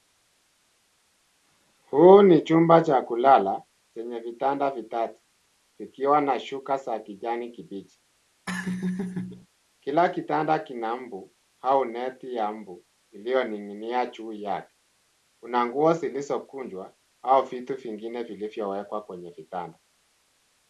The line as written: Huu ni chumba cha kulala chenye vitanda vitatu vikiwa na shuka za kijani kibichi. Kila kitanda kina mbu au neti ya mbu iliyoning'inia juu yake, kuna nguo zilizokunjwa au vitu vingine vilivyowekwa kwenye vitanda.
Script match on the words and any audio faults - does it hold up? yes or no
no